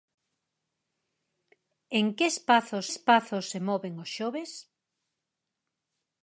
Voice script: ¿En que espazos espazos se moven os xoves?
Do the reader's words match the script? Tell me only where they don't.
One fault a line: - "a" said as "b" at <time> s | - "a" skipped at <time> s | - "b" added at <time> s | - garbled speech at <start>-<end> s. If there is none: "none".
none